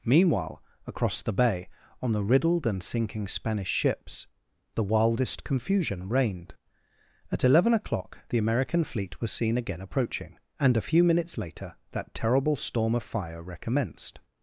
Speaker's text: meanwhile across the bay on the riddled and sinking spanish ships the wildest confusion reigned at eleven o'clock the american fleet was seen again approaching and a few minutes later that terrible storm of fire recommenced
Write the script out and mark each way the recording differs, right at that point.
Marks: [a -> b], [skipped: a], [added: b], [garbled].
meanwhile across the bay on the riddled and sinking spanish ships the wildest confusion reigned at eleven o'clock the american fleet was seen again approaching and a few minutes later that terrible storm of fire recommenced